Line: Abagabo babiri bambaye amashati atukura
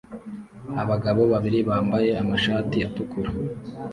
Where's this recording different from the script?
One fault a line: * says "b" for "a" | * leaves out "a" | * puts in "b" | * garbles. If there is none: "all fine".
all fine